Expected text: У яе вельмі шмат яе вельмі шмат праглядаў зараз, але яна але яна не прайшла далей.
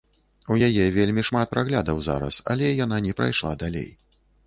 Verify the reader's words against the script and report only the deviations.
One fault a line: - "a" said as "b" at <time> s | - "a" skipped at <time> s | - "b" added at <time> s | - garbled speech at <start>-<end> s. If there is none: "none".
- "яе вельмі шмат" skipped at 1.5 s
- "але яна" skipped at 3.0 s